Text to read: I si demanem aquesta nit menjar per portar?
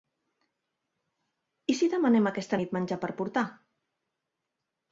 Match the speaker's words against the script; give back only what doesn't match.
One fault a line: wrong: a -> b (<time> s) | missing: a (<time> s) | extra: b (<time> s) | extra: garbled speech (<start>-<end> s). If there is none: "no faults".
no faults